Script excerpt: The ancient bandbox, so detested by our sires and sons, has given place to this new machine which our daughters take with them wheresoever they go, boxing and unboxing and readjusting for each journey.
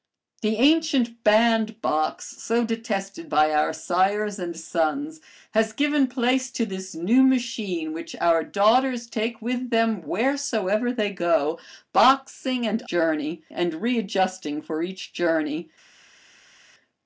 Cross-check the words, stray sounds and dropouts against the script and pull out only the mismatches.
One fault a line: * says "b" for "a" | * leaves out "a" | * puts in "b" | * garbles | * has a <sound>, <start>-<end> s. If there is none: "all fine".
* says "journey" for "unboxing"